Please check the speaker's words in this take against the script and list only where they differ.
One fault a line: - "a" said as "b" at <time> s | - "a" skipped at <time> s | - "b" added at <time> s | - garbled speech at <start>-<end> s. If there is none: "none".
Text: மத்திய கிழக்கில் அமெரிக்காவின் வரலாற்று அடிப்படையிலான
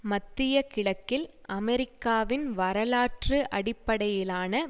none